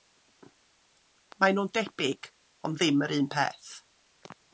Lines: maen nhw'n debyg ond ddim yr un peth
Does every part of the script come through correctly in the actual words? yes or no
yes